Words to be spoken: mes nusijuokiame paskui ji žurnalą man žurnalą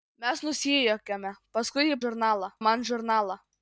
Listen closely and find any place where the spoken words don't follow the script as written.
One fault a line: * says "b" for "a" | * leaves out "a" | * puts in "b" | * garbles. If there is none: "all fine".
all fine